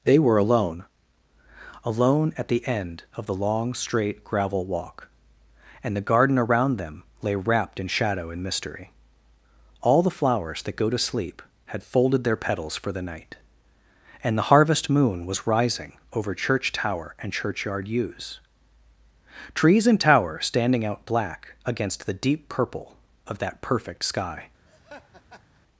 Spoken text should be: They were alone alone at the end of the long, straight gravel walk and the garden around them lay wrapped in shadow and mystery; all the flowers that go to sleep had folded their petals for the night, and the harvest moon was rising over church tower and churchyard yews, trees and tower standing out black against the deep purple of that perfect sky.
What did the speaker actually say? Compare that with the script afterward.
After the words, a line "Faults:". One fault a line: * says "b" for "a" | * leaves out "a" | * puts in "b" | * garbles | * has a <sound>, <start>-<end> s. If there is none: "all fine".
They were alone alone at the end of the long, straight gravel walk and the garden around them lay wrapped in shadow and mystery; all the flowers that go to sleep had folded their petals for the night, and the harvest moon was rising over church tower and churchyard yews, trees and tower standing out black against the deep purple of that perfect sky.
Faults:
* has a laugh, 24.7-25.6 s